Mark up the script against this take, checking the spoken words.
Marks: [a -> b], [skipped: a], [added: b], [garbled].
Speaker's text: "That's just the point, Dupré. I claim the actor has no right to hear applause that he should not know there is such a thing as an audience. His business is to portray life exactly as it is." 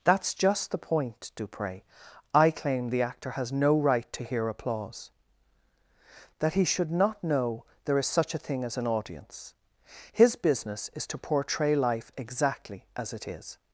"That's just the point, Dupré. I claim the actor has no right to hear applause that he should not know there is such a thing as an audience. His business is to portray life exactly as it is."